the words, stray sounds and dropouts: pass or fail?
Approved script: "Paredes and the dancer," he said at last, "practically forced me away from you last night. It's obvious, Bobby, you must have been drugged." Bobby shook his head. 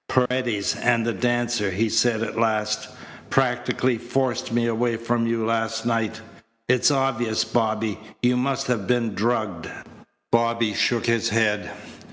fail